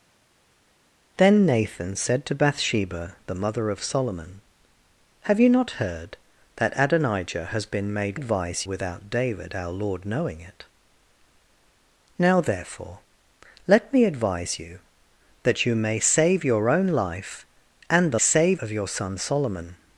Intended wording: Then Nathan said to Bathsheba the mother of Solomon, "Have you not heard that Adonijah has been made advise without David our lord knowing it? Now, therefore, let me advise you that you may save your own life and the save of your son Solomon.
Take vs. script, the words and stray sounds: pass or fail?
pass